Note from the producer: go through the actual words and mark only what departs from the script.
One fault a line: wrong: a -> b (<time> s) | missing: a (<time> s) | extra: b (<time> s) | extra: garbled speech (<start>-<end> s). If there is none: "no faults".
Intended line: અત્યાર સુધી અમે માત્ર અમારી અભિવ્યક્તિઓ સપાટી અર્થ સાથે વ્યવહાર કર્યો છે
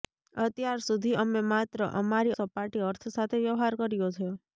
missing: અભિવ્યક્તિઓ (2.3 s)